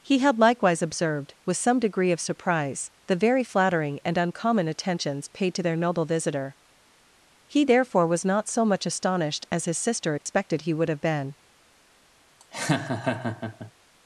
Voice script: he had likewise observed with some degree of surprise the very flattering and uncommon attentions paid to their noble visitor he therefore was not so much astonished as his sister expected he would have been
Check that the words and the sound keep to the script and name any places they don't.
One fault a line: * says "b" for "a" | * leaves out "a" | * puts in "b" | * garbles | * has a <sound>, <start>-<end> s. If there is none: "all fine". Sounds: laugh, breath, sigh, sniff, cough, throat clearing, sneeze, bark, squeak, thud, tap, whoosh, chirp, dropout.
* has a dropout, 10.2-10.3 s
* has a laugh, 12.4-13.7 s